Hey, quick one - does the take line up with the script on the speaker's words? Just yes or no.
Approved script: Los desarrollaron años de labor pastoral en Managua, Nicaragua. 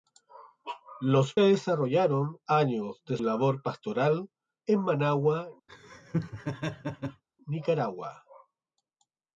yes